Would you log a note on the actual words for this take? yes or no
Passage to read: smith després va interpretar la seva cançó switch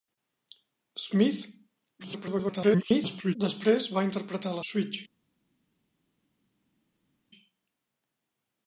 yes